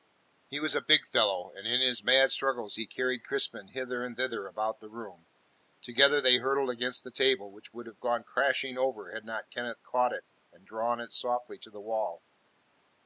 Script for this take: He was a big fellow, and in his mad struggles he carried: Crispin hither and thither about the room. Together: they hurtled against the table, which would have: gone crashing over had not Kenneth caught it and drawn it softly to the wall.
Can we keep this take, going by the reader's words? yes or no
yes